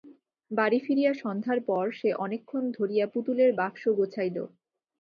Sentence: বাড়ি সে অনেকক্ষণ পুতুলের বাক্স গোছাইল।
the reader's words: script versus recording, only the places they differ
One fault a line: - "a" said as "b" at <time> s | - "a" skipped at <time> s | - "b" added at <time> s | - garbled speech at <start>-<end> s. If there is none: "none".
- "ফিরিয়া সন্ধ্যার পর" added at 0.8 s
- "ধরিয়া" added at 2.8 s